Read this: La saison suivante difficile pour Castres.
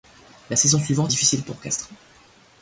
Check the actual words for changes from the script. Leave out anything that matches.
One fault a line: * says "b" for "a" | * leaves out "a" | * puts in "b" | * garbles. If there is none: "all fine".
all fine